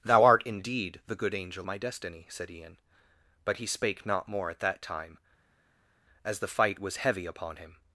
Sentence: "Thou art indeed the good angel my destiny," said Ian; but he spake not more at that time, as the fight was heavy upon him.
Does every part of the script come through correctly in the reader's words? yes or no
yes